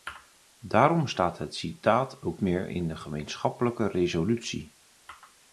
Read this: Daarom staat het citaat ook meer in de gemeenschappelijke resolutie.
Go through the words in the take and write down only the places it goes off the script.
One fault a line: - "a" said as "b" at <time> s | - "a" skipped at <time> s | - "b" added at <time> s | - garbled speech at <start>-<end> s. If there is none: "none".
none